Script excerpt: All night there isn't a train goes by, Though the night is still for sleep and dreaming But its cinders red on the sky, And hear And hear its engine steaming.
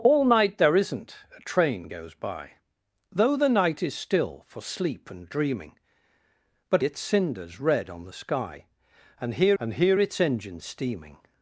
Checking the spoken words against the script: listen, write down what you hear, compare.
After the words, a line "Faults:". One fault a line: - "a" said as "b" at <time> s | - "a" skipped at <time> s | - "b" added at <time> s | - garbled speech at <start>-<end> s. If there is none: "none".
All night there isn't a train goes by, Though the night is still for sleep and dreaming But its cinders red on the sky, And hear And hear its engine steaming.
Faults:
none